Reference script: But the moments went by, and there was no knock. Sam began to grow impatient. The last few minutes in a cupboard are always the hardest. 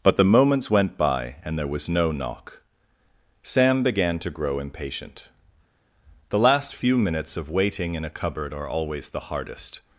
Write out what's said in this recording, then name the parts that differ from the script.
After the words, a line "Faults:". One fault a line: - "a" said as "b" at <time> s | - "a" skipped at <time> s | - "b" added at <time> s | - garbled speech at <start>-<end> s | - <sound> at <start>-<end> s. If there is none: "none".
But the moments went by, and there was no knock. Sam began to grow impatient. The last few minutes of waiting in a cupboard are always the hardest.
Faults:
- "of waiting" added at 7.4 s